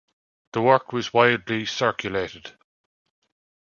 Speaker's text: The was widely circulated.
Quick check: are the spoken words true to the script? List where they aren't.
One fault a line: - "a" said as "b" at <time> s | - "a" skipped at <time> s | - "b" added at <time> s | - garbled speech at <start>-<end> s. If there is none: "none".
- "work" added at 0.6 s